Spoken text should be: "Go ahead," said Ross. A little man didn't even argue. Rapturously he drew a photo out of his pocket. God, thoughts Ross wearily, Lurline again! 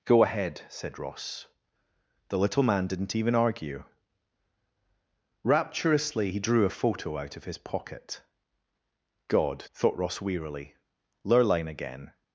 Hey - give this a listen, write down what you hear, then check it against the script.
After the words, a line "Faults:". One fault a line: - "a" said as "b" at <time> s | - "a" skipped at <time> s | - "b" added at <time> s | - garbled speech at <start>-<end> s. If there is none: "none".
"Go ahead," said Ross. The little man didn't even argue. Rapturously he drew a photo out of his pocket. God, thought Ross wearily, Lurline again!
Faults:
- "A" said as "The" at 2.3 s
- "thoughts" said as "thought" at 9.6 s